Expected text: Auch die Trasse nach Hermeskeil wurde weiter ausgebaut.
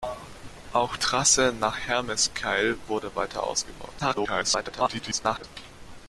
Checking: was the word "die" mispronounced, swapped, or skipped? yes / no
yes